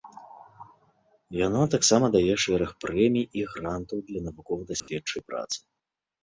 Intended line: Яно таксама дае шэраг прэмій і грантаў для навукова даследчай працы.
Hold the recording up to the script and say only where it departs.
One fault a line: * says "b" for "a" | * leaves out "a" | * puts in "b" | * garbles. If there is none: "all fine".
all fine